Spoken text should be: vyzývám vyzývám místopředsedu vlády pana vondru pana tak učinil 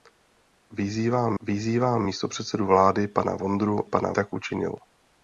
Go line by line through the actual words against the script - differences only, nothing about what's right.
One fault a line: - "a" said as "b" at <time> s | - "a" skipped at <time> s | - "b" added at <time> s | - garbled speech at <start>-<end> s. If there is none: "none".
none